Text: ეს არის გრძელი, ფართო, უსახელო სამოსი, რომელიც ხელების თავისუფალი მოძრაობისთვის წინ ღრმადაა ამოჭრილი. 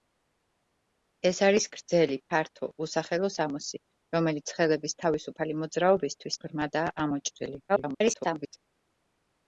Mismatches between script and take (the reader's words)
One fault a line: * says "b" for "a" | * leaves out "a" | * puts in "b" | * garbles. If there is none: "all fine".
* leaves out "წინ"
* garbles